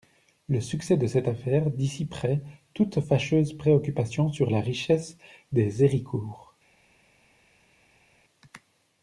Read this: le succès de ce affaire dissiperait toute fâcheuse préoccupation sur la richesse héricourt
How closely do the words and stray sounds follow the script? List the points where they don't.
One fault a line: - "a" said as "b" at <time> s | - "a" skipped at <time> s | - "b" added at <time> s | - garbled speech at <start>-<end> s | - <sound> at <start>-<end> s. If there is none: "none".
- "ce" said as "cette" at 1.1 s
- "des" added at 5.5 s